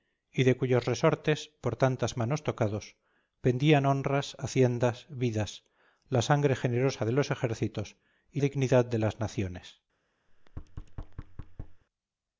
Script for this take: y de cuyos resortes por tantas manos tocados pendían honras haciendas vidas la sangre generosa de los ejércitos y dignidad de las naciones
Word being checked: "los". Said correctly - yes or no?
yes